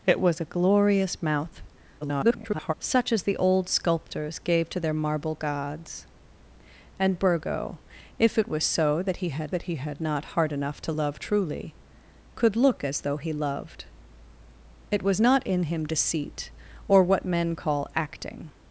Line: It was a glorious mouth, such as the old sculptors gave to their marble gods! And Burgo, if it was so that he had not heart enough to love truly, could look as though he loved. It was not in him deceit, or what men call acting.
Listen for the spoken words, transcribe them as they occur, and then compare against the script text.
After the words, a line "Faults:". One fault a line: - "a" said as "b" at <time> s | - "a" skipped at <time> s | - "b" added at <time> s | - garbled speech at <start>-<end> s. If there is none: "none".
It was a glorious mouth, [garbled] such as the old sculptors gave to their marble gods! And Burgo, if it was so that he had that he had not heart enough to love truly, could look as though he loved. It was not in him deceit, or what men call acting.
Faults:
- garbled speech at 2.0-2.7 s
- "that he had" added at 9.5 s